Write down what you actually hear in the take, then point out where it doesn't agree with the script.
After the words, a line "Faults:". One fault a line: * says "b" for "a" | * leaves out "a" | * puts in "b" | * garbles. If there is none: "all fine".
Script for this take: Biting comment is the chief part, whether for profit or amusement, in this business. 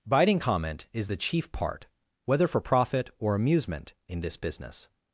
Biting comment is the chief part, whether for profit or amusement, in this business.
Faults:
all fine